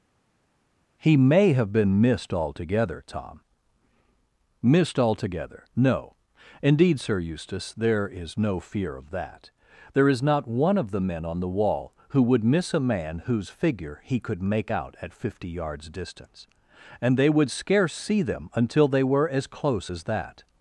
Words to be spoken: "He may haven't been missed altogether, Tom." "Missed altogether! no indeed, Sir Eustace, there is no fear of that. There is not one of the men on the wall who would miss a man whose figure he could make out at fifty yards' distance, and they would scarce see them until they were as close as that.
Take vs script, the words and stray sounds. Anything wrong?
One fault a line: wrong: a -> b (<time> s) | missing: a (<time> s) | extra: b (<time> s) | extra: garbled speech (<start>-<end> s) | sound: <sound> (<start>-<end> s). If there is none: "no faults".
wrong: haven't -> have (1.5 s)